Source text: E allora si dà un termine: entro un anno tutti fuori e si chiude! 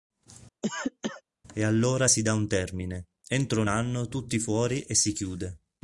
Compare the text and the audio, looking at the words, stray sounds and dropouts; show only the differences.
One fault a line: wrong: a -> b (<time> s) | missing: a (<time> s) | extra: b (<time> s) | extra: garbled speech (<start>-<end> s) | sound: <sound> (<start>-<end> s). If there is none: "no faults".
sound: cough (0.6-1.2 s)